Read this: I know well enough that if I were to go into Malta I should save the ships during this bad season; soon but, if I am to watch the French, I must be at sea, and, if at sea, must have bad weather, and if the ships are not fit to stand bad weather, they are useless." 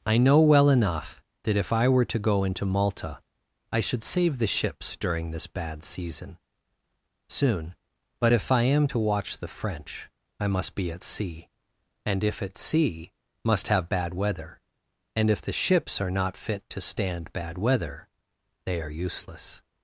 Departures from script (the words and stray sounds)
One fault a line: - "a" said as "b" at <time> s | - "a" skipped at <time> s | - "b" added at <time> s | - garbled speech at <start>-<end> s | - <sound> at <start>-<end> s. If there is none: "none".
none